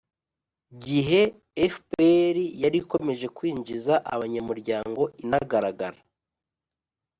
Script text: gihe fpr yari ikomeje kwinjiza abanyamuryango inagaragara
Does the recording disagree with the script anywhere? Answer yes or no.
no